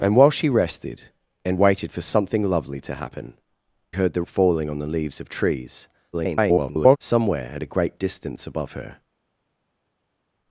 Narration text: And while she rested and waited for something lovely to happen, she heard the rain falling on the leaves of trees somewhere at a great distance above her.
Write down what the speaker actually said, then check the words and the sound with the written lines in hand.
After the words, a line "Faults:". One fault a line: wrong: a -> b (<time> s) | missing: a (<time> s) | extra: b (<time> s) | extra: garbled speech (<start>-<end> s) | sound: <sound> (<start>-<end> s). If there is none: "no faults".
And while she rested and waited for something lovely to happen, heard the falling on the leaves of trees [garbled] somewhere at a great distance above her.
Faults:
missing: she (3.4 s)
missing: rain (4.2 s)
extra: garbled speech (6.1-7.0 s)